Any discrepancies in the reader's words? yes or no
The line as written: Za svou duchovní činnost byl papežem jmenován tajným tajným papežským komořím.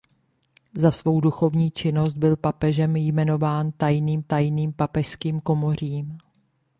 no